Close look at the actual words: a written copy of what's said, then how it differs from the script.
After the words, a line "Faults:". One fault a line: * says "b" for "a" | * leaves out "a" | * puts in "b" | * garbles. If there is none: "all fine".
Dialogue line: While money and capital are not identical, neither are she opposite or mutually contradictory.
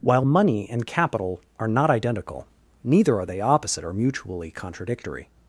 While money and capital are not identical, neither are they opposite or mutually contradictory.
Faults:
* says "they" for "she"